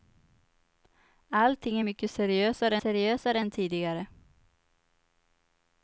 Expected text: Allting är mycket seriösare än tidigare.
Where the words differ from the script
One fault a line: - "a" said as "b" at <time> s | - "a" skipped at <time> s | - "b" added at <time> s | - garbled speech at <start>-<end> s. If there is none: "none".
- "seriösare" added at 2.8 s